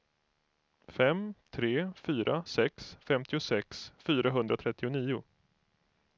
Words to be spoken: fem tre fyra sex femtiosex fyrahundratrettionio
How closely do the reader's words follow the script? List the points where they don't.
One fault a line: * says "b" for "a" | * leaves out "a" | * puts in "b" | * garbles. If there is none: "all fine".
all fine